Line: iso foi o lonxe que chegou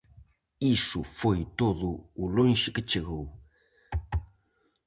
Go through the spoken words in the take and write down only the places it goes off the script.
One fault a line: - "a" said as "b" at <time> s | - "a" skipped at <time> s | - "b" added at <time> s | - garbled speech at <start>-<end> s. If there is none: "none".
- "todo" added at 1.6 s